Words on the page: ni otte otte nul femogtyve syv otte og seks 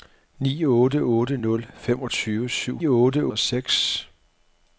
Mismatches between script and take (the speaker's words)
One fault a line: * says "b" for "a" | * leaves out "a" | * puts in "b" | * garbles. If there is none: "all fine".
all fine